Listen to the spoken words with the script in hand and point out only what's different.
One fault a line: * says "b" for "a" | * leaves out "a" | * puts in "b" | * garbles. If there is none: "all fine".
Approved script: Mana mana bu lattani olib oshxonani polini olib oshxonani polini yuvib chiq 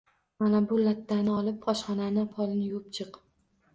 * leaves out "mana"
* leaves out "olib oshxonani polini"